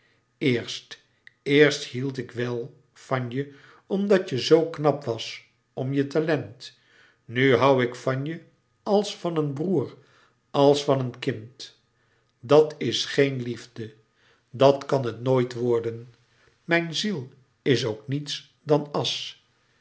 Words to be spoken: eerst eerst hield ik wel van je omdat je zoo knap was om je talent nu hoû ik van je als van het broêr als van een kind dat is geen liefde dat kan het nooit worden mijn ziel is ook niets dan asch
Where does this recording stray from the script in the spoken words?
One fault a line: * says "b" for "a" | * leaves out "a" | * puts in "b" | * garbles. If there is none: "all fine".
* says "een" for "het"